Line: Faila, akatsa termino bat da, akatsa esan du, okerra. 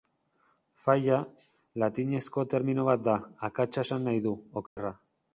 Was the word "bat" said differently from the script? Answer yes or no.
no